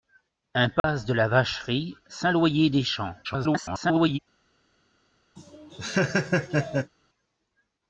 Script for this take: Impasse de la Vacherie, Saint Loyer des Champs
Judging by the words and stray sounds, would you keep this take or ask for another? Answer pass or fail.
fail